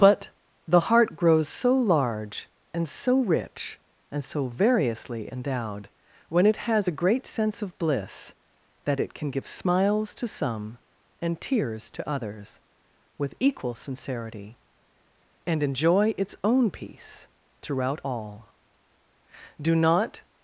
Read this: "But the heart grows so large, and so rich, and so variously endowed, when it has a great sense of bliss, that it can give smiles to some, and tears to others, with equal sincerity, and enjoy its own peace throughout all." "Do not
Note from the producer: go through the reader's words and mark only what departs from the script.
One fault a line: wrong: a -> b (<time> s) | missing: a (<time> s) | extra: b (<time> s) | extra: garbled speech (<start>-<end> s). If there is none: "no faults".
no faults